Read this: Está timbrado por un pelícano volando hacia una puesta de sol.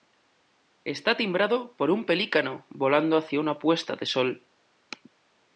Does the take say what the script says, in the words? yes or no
yes